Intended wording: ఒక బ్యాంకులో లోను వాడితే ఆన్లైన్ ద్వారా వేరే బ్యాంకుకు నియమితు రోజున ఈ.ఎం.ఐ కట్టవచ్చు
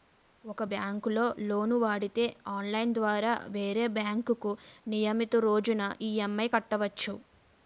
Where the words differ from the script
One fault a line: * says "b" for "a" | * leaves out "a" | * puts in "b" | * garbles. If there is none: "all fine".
all fine